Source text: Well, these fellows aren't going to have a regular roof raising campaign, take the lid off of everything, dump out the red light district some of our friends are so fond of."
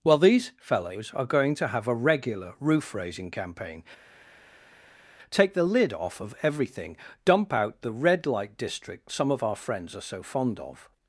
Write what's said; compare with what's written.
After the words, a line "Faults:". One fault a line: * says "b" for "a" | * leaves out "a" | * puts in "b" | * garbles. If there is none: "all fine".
Well, these fellows are going to have a regular roof raising campaign, take the lid off of everything, dump out the red light district some of our friends are so fond of."
Faults:
* says "are" for "aren't"